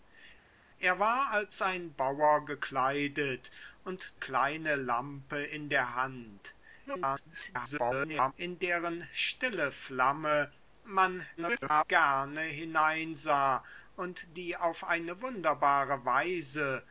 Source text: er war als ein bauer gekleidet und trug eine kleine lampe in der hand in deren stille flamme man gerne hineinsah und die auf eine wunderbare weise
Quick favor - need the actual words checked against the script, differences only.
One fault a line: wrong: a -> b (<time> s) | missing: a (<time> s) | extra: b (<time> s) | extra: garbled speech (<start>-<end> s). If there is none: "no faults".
missing: trug eine (4.2 s)
extra: garbled speech (6.9-8.3 s)
extra: garbled speech (11.4-11.8 s)